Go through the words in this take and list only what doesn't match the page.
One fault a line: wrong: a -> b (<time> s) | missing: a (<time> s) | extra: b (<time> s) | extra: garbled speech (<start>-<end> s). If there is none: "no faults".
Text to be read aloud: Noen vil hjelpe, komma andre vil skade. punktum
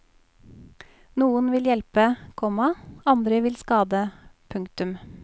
no faults